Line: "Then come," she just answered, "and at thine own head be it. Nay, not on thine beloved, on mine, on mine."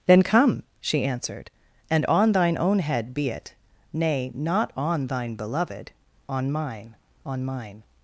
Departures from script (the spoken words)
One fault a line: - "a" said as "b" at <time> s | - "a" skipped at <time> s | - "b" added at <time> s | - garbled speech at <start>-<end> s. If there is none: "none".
- "just" skipped at 1.0 s
- "at" said as "on" at 2.1 s